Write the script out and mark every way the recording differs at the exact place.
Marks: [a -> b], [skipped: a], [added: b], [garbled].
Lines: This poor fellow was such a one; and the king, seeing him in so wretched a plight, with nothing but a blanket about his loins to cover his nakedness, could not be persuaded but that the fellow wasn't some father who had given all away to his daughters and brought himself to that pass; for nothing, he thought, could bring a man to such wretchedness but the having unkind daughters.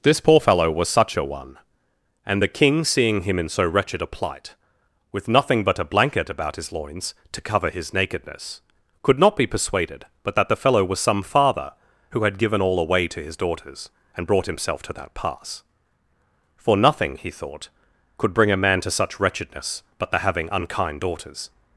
This poor fellow was such a one; and the king, seeing him in so wretched a plight, with nothing but a blanket about his loins to cover his nakedness, could not be persuaded but that the fellow [wasn't -> was] some father who had given all away to his daughters and brought himself to that pass; for nothing, he thought, could bring a man to such wretchedness but the having unkind daughters.